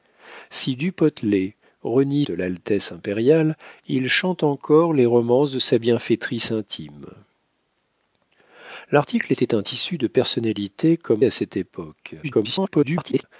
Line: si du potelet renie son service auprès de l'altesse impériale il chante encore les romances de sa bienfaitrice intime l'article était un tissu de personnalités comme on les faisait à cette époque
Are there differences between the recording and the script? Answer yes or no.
yes